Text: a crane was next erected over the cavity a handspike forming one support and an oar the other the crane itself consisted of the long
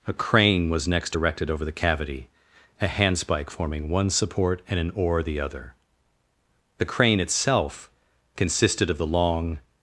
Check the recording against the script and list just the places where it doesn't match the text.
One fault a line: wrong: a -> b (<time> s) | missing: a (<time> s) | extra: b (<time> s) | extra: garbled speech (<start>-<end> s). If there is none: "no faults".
no faults